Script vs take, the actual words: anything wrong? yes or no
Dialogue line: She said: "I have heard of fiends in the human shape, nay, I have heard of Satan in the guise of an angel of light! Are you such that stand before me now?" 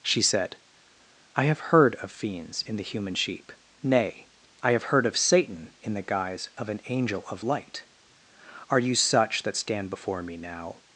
yes